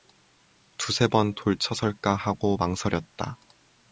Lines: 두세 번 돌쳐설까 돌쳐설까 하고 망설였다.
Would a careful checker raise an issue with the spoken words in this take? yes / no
yes